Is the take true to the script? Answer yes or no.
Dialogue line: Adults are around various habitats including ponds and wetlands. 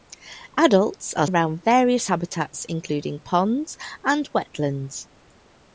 yes